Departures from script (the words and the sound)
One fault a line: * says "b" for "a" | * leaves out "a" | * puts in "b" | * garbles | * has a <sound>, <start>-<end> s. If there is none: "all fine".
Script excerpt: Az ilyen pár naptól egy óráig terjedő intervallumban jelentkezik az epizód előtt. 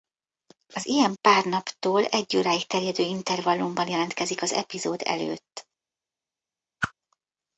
* has a whoosh, 6.8-6.9 s